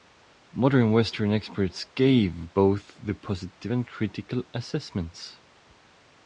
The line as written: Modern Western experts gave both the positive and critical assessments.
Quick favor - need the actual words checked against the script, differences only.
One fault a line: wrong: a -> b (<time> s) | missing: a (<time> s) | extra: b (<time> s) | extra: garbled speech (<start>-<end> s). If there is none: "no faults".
no faults